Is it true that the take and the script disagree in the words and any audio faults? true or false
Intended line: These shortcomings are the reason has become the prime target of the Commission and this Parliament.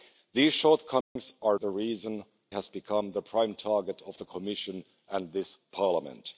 true